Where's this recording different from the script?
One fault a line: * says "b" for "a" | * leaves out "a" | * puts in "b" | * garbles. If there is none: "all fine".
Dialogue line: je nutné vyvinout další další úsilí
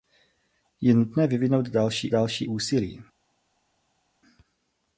all fine